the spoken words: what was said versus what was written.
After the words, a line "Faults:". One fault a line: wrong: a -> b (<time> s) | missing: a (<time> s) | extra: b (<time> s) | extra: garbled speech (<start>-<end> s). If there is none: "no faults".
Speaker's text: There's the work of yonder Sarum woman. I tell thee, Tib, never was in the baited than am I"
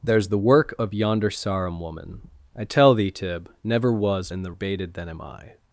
There's the work of yonder Sarum woman. I tell thee, Tib, never was in the baited than am I"
Faults:
no faults